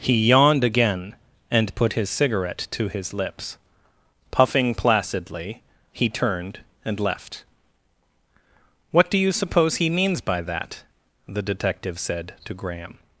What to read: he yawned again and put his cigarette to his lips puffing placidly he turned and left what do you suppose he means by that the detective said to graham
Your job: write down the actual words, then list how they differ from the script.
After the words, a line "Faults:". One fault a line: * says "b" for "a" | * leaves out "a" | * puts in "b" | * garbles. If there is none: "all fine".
he yawned again and put his cigarette to his lips puffing placidly he turned and left what do you suppose he means by that the detective said to graham
Faults:
all fine